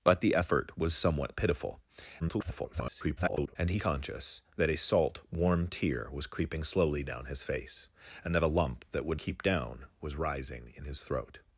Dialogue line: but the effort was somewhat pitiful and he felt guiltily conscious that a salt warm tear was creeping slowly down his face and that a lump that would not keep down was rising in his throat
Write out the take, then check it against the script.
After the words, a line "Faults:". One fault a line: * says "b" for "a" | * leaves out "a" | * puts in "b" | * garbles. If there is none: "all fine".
but the effort was somewhat pitiful [garbled] and he conscious that a salt warm tear was creeping slowly down his face and that a lump that would keep down was rising in his throat
Faults:
* garbles
* leaves out "felt guiltily"
* leaves out "not"